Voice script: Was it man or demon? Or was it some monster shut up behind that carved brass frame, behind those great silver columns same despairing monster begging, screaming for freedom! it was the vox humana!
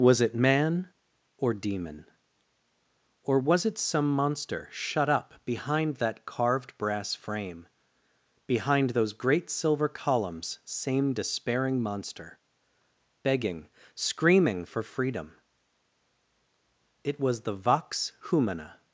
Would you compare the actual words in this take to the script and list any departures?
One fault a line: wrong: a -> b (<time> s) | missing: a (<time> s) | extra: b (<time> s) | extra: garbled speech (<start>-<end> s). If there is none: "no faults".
no faults